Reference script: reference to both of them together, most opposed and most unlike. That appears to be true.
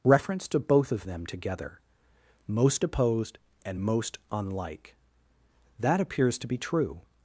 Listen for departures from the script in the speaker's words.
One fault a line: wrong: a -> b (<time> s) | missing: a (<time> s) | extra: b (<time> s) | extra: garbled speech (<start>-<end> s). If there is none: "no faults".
no faults